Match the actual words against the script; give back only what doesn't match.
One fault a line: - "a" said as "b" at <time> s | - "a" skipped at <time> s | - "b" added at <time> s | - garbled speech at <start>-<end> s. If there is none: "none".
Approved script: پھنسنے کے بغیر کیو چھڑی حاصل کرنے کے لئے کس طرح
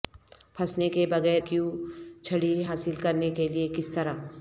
none